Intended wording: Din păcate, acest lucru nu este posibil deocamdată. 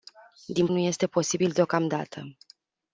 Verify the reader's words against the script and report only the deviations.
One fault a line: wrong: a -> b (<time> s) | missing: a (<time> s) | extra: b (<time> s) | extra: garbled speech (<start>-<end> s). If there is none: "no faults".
missing: păcate acest lucru (0.7 s)